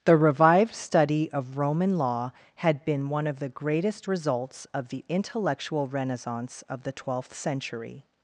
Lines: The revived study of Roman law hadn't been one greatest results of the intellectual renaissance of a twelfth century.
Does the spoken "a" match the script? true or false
false